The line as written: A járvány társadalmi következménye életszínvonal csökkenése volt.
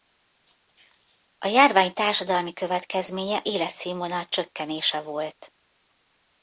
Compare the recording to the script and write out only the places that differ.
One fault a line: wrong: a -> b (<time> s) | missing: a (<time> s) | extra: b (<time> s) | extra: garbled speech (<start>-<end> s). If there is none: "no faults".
no faults